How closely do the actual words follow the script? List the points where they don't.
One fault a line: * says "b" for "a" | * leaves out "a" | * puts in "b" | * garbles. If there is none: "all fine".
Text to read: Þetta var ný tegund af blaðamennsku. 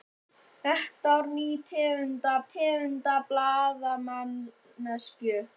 * puts in "tegund af"